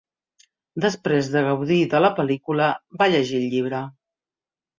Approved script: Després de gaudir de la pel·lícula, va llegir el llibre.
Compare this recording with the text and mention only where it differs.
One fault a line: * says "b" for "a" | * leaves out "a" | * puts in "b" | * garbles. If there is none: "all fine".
all fine